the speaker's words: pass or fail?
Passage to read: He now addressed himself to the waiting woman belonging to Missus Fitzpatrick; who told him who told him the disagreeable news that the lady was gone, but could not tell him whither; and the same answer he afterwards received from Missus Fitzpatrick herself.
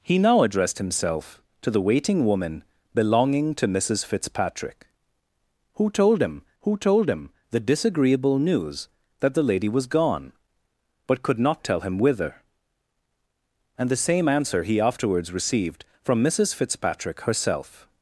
pass